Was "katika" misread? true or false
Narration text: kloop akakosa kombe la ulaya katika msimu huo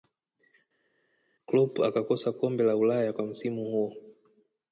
true